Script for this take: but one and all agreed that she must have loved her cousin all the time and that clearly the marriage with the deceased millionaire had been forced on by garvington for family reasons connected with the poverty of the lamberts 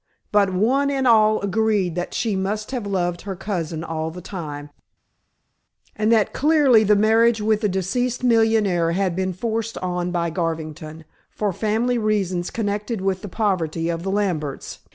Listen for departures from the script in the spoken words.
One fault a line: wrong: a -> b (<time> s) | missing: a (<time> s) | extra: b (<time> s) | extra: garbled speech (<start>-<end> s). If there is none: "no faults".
no faults